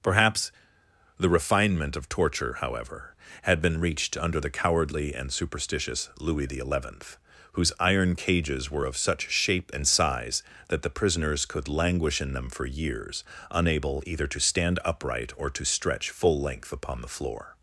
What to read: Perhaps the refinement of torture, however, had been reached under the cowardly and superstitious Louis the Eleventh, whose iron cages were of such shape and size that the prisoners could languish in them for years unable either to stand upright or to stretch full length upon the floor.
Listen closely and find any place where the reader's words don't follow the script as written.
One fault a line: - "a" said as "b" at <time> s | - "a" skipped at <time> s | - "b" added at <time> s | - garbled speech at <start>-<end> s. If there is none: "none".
none